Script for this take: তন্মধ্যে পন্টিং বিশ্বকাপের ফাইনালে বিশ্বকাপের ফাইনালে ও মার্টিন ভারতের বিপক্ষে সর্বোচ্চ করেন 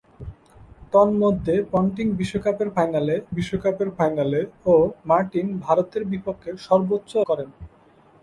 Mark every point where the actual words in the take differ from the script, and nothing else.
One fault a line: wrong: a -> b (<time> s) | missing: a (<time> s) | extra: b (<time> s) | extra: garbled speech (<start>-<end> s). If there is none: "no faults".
no faults